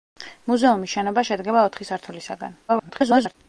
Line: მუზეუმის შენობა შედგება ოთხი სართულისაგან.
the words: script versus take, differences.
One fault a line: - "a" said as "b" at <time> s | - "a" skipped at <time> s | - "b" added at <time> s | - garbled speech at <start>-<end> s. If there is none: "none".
- garbled speech at 2.7-3.3 s